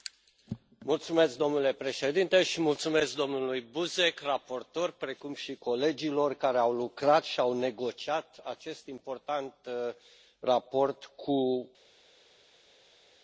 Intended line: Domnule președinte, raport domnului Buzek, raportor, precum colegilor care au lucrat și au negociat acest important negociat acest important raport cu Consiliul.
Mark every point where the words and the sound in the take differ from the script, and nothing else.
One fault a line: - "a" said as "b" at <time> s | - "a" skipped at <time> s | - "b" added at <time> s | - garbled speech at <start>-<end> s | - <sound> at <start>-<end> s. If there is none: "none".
- "raport" said as "mulțumesc" at 2.6 s
- "și" added at 5.3 s
- "negociat acest important" skipped at 9.5 s